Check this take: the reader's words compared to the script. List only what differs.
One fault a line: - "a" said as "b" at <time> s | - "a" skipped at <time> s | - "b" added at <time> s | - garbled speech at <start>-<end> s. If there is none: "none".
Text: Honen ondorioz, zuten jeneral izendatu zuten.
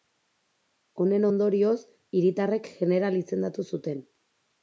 - "zuten" said as "hiritarrek" at 2.2 s